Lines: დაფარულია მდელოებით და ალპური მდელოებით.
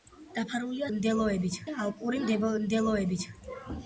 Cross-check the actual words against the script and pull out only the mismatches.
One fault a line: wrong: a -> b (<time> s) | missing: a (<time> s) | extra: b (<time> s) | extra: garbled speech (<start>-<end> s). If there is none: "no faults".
no faults